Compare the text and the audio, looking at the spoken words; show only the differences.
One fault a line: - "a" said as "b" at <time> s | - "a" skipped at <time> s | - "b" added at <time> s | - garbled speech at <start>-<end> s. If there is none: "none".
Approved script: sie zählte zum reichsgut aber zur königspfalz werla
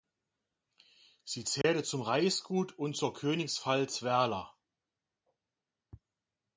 - "aber" said as "und" at 2.8 s